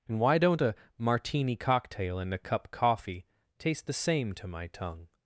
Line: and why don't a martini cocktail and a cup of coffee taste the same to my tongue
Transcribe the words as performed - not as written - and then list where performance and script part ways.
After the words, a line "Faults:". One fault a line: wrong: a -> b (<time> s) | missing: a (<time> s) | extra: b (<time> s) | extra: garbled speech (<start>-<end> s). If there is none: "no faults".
and why don't a martini cocktail and a cup coffee taste the same to my tongue
Faults:
missing: of (2.7 s)